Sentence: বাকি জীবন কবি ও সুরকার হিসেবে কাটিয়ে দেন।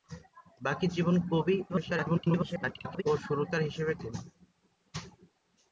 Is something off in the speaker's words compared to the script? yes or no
yes